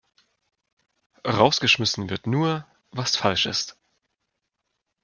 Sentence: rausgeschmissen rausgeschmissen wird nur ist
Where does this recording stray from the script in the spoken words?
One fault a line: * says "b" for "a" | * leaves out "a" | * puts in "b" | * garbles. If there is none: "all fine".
* leaves out "rausgeschmissen"
* puts in "was falsch"